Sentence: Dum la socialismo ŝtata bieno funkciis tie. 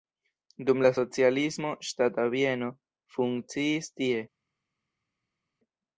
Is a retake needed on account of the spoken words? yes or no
no